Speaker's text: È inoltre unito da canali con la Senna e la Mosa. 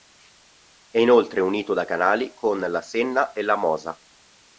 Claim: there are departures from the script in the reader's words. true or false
false